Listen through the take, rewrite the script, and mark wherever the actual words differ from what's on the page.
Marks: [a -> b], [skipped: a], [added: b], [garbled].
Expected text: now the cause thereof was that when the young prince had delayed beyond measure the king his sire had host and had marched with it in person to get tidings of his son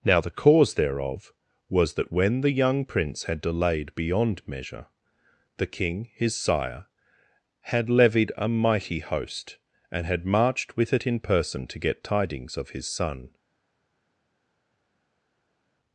now the cause thereof was that when the young prince had delayed beyond measure the king his sire had [added: levied a mighty] host and had marched with it in person to get tidings of his son